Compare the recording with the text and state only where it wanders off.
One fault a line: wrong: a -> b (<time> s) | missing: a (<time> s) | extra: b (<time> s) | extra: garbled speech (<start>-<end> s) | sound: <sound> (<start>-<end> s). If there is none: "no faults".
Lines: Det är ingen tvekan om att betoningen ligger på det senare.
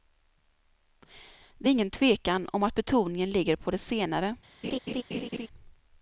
sound: laugh (4.6-5.5 s)